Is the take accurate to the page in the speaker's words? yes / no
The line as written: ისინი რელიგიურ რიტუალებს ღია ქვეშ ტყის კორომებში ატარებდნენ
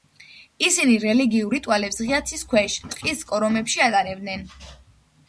no